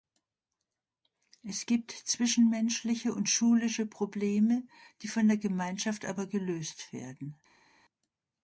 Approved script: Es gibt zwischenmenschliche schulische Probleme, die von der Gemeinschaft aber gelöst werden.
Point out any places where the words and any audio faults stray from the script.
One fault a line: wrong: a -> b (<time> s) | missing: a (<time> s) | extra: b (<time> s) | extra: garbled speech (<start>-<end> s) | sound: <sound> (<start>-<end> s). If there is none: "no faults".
extra: und (3.1 s)